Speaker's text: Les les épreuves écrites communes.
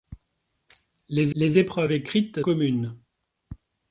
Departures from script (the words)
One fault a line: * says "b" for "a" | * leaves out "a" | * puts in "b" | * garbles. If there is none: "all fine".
all fine